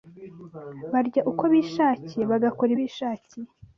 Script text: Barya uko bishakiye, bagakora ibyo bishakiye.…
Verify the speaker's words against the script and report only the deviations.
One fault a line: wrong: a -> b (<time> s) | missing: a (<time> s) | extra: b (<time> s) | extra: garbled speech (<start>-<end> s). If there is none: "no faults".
missing: ibyo (2.7 s)